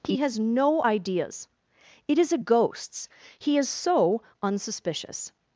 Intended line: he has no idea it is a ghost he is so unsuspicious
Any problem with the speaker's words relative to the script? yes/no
yes